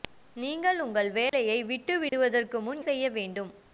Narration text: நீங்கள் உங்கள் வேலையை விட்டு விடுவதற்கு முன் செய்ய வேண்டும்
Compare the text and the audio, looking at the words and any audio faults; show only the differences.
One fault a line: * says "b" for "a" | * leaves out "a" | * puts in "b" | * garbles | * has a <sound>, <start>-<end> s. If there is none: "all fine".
* has a dropout, 1.3-1.3 s
* has a dropout, 2.1-2.1 s